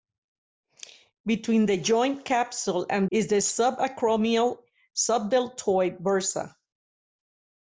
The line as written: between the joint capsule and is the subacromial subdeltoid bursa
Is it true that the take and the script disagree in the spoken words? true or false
false